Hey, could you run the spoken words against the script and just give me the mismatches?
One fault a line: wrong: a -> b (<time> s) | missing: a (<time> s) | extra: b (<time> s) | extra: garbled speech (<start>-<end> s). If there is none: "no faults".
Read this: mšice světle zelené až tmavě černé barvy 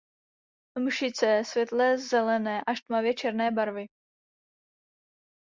no faults